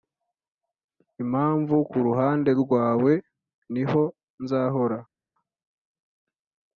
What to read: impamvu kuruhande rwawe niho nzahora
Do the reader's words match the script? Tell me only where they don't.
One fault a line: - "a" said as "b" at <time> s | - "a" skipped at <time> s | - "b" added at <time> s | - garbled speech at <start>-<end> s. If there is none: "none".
none